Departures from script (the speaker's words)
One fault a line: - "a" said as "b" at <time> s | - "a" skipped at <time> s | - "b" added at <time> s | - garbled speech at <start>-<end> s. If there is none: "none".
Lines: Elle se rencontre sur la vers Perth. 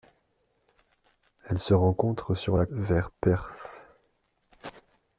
none